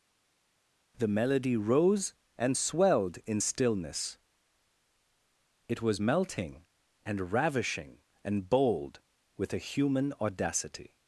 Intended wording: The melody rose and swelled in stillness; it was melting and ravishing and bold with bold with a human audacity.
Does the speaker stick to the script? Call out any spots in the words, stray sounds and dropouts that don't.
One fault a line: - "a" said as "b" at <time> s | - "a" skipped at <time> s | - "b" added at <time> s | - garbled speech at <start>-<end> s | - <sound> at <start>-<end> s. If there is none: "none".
- "bold with" skipped at 9.5 s